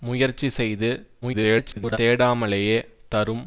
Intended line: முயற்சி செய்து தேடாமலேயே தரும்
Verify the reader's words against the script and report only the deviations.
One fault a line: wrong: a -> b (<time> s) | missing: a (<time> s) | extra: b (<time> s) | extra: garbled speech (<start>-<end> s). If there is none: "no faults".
extra: garbled speech (1.2-2.0 s)